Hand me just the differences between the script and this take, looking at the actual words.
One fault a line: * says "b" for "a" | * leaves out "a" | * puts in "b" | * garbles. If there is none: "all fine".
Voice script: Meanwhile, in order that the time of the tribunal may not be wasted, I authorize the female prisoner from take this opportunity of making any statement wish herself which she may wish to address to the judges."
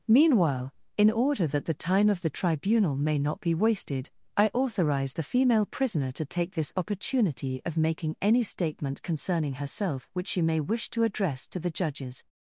* says "to" for "from"
* says "concerning" for "wish"